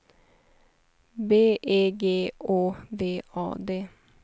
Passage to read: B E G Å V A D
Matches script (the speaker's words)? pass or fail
pass